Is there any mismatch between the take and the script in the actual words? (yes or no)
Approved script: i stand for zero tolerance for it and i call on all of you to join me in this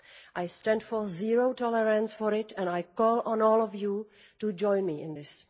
no